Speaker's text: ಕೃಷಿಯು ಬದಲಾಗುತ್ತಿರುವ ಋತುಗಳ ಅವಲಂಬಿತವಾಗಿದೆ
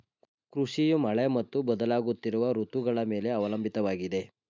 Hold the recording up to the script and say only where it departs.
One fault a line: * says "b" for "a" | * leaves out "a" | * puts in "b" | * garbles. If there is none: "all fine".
* puts in "ಮಳೆ ಮತ್ತು"
* puts in "ಮೇಲೆ"